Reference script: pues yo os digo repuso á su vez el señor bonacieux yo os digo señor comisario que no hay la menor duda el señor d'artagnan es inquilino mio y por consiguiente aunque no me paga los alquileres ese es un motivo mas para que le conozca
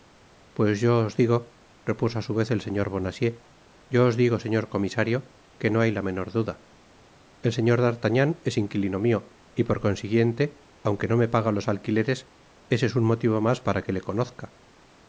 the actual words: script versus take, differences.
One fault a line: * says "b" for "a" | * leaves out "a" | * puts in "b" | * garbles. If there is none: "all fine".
all fine